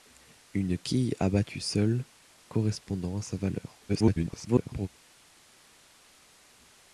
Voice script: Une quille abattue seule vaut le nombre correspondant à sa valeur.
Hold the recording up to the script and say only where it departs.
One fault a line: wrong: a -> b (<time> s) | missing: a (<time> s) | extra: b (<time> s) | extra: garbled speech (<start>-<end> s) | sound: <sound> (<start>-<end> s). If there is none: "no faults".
missing: vaut le nombre (2.1 s)
extra: garbled speech (3.9-4.9 s)